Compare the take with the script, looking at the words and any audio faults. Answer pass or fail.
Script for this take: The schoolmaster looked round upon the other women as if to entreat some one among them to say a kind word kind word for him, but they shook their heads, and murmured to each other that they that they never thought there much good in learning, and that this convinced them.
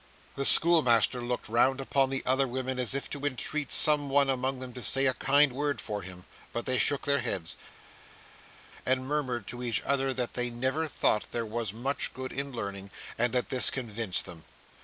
fail